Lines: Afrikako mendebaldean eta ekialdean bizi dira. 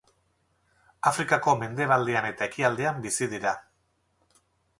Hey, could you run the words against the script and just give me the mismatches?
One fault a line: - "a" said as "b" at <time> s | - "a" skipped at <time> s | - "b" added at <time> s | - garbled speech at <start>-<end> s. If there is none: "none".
none